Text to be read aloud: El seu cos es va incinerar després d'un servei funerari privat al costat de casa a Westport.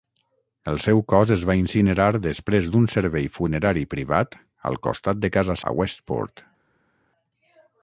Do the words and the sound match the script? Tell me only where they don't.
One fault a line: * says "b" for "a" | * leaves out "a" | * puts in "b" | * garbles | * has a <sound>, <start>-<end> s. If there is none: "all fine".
all fine